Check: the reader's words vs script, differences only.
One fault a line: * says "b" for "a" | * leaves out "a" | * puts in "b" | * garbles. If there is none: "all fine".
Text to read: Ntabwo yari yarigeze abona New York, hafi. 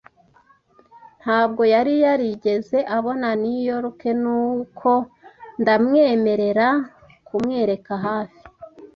* puts in "nuko ndamwemerera kumwereka"